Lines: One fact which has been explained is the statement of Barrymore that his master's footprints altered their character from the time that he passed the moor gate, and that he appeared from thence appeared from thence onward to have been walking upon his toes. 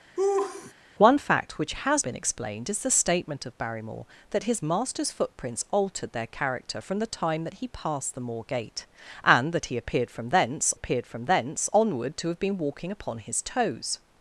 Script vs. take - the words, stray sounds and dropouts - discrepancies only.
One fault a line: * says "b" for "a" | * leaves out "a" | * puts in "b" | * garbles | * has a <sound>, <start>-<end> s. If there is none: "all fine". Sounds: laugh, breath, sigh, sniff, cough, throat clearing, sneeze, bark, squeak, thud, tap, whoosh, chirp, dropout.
* has a laugh, 0.2-0.7 s